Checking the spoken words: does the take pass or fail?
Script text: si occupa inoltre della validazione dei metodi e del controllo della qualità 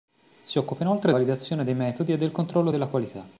fail